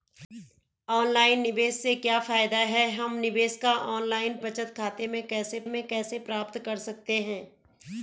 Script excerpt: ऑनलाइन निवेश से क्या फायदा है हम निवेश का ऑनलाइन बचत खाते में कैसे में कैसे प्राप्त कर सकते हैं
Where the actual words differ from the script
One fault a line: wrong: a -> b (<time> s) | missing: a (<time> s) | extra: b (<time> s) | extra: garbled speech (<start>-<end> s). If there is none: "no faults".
no faults